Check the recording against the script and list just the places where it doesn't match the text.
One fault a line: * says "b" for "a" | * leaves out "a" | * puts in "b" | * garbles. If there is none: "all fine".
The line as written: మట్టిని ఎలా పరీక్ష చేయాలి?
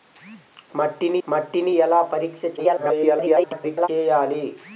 * puts in "మట్టిని"
* garbles